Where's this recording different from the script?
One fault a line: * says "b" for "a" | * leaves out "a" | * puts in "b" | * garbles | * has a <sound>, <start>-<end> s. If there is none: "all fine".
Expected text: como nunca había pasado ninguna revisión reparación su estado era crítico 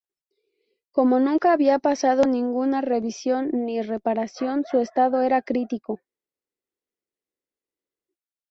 * puts in "ni"